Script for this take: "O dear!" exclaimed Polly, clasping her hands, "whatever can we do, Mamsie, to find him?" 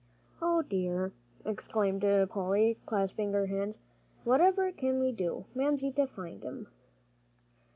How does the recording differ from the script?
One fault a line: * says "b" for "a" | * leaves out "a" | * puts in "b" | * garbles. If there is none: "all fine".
all fine